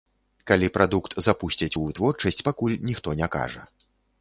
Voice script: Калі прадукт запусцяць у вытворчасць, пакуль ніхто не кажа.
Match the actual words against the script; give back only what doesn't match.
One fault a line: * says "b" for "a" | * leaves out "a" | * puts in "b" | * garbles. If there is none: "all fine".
all fine